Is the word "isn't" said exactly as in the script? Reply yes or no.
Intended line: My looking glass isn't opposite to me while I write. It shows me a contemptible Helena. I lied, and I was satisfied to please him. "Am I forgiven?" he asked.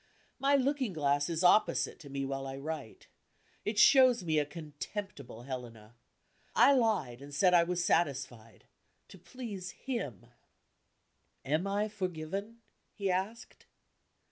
no